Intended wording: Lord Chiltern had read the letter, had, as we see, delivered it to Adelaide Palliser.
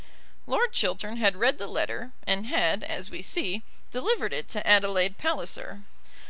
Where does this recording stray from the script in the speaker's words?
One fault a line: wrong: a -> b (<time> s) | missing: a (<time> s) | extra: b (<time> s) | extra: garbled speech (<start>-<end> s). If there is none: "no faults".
extra: and (2.2 s)